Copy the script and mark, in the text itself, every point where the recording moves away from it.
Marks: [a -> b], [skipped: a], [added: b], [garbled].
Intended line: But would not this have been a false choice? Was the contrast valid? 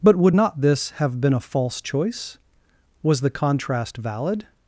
But would not this have been a false choice? Was the contrast valid?